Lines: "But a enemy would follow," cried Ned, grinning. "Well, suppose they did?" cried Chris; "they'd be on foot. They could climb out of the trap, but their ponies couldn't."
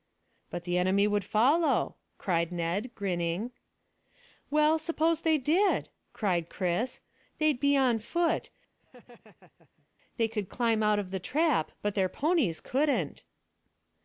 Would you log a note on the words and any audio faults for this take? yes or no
yes